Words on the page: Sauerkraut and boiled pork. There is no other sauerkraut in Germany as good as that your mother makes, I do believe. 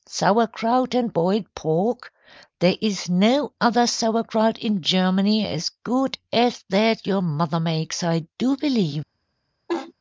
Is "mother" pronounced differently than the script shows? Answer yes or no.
no